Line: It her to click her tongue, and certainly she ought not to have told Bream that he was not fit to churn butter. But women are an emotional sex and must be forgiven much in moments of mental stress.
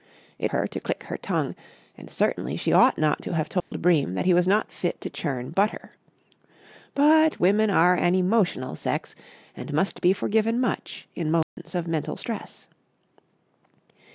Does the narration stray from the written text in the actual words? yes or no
no